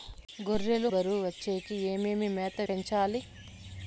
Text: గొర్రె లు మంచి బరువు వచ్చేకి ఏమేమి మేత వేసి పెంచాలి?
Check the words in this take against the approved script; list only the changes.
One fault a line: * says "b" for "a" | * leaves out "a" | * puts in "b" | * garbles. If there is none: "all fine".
* leaves out "మంచి"
* leaves out "వేసి"